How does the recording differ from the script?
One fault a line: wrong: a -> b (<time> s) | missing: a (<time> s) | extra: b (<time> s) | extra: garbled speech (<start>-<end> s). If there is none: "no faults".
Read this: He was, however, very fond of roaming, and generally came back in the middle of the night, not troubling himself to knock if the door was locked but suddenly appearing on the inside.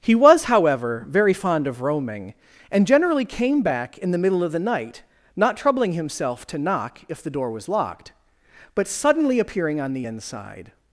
no faults